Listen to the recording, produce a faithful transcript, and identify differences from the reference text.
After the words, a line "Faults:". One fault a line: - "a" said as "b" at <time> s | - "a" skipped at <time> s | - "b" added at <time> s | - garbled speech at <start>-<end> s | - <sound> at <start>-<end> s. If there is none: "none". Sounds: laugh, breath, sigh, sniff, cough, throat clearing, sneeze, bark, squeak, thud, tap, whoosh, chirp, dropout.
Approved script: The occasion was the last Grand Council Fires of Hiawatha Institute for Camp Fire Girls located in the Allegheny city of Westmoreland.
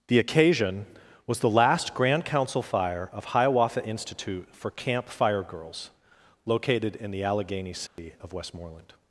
The occasion was the last Grand Council Fire of Hiawatha Institute for Camp Fire Girls located in the Allegheny city of Westmoreland.
Faults:
- "Fires" said as "Fire" at 2.6 s
- dropout at 7.9-8.0 s